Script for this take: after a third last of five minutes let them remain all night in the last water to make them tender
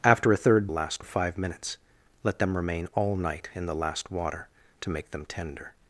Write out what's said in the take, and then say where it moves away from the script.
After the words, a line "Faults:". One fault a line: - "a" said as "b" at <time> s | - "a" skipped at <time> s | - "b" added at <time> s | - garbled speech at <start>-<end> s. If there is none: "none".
after a third last of five minutes let them remain all night in the last water to make them tender
Faults:
none